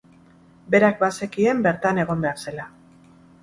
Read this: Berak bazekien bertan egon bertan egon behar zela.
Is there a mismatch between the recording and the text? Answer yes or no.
yes